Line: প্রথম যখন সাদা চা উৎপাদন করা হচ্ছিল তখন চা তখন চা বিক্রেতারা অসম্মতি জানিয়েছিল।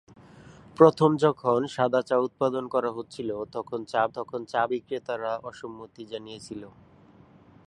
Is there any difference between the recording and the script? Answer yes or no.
no